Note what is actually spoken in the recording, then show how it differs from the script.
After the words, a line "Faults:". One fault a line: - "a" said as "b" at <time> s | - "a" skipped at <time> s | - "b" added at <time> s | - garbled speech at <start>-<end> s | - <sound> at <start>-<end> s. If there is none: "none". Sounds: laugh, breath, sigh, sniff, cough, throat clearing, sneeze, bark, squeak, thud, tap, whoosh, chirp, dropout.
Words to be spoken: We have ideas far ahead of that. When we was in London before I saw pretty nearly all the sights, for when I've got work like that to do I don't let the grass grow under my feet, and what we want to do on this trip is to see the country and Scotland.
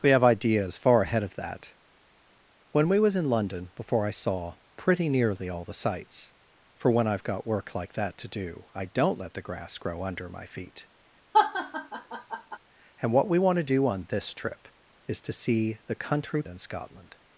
We have ideas far ahead of that. When we was in London before I saw pretty nearly all the sights, for when I've got work like that to do I don't let the grass grow under my feet, and what we want to do on this trip is to see the country and Scotland.
Faults:
- laugh at 11.3-12.6 s